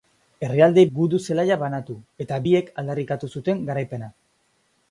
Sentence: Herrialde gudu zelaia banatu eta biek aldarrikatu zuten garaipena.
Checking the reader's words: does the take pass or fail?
pass